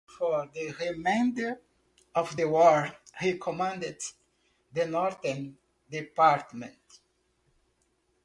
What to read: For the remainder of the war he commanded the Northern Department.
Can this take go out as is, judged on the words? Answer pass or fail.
pass